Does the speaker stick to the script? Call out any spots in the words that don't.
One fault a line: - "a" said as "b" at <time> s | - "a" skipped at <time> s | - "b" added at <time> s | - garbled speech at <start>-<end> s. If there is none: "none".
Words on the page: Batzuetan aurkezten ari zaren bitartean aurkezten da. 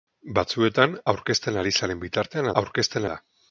none